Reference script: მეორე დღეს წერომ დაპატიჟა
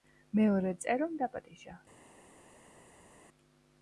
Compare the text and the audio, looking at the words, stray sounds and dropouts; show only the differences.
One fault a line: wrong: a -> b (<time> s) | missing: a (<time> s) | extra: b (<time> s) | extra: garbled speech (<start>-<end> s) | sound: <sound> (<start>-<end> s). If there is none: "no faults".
missing: დღეს (0.7 s)